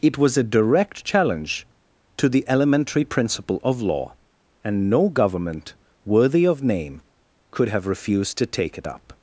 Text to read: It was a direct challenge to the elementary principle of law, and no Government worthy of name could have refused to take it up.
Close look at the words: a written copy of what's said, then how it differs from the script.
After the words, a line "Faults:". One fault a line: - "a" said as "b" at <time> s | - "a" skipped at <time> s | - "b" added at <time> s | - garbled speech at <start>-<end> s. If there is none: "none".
It was a direct challenge to the elementary principle of law, and no Government worthy of name could have refused to take it up.
Faults:
none